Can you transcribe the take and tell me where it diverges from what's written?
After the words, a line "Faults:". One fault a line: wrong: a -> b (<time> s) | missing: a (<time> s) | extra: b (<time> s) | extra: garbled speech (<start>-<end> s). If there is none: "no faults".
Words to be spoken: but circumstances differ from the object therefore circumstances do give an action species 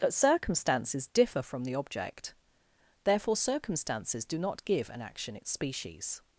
but circumstances differ from the object therefore circumstances do not give an action its species
Faults:
extra: not (4.4 s)
extra: its (5.3 s)